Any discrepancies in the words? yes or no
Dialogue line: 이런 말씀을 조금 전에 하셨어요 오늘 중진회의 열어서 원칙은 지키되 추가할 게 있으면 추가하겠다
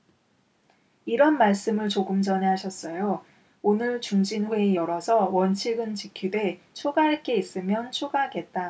no